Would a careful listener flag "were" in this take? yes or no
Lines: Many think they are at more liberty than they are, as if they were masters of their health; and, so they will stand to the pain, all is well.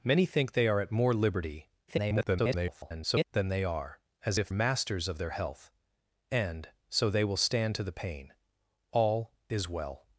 yes